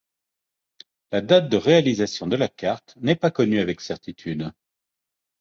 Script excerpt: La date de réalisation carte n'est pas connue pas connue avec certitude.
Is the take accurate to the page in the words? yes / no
no